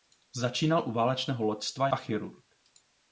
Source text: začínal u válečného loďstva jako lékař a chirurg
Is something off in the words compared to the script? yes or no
yes